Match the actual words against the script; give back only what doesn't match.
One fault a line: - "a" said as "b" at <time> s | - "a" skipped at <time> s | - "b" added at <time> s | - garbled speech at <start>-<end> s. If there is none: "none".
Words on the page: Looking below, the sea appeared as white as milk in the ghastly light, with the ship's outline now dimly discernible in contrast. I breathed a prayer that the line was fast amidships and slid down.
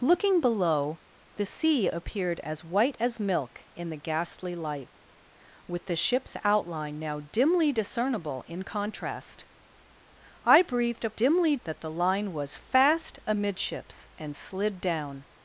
- "prayer" said as "dimly" at 11.1 s